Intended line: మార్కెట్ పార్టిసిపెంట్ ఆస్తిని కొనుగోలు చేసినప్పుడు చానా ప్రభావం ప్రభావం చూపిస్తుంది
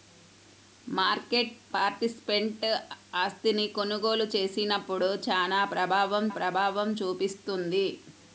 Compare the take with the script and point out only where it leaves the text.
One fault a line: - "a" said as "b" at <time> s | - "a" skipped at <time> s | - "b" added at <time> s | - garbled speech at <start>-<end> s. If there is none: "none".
none